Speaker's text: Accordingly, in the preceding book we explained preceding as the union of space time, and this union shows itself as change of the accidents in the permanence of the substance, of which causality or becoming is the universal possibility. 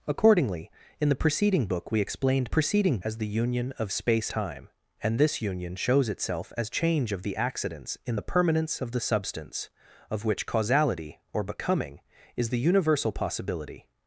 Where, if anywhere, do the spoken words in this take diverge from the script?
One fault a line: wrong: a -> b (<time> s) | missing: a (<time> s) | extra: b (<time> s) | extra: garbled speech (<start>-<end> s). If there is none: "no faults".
no faults